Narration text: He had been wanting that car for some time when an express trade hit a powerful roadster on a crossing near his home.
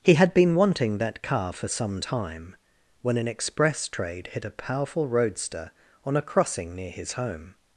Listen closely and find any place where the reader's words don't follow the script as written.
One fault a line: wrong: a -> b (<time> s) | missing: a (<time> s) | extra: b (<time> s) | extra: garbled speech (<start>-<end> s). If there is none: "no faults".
no faults